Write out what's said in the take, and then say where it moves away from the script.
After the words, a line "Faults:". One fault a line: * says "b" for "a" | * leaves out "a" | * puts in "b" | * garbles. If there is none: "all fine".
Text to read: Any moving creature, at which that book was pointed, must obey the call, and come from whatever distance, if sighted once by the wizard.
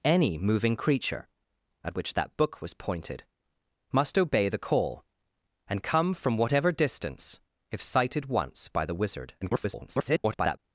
Any moving creature, at which that book was pointed, must obey the call, and come from whatever distance, if sighted once by the wizard. [garbled]
Faults:
* garbles